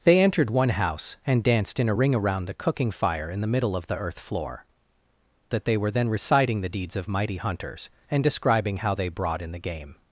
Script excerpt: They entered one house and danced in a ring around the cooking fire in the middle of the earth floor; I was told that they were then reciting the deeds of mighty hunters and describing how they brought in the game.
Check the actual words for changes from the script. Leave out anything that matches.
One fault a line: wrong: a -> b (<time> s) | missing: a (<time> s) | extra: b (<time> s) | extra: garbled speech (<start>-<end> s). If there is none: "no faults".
missing: I was told (4.6 s)